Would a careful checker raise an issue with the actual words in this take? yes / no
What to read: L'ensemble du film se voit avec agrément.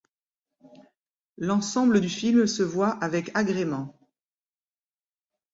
no